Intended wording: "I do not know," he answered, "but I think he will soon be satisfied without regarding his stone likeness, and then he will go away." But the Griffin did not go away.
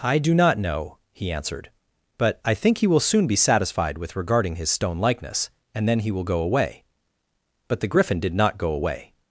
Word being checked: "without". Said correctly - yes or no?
no